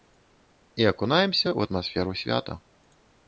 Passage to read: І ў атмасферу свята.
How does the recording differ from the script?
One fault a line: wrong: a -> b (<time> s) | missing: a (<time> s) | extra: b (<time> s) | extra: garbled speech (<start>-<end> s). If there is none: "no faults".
extra: акунаемся (0.9 s)